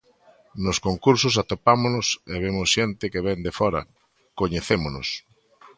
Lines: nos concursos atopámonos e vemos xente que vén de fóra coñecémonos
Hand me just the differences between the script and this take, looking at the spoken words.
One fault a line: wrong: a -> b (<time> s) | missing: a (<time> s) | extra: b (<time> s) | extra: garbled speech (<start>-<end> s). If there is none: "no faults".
no faults